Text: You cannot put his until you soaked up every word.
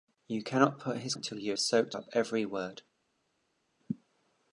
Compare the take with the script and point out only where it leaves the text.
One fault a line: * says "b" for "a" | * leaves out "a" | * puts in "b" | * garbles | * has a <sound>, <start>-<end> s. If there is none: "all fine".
all fine